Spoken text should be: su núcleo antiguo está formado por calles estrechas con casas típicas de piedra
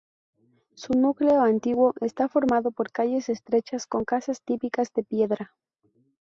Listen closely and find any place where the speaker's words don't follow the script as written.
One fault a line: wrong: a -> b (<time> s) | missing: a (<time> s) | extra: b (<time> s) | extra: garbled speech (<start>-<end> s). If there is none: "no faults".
no faults